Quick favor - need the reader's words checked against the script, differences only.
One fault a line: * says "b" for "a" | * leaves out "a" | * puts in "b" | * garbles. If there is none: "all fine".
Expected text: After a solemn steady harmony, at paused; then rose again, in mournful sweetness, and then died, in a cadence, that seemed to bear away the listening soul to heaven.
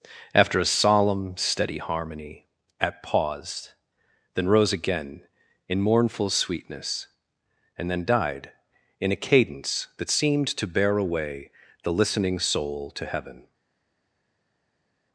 all fine